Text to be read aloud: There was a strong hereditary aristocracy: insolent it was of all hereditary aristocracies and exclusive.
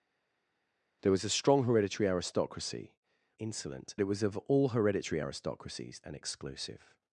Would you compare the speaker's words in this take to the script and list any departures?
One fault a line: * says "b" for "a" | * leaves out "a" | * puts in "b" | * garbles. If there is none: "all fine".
all fine